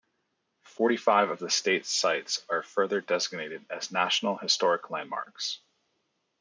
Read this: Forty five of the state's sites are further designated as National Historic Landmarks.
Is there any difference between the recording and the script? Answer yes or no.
no